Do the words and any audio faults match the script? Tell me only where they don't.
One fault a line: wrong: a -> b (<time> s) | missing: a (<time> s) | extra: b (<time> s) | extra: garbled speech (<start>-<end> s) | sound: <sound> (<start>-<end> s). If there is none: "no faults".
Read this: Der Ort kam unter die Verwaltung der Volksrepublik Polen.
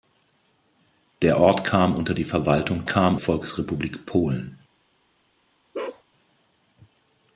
wrong: der -> kam (2.9 s)
sound: bark (5.7-6.0 s)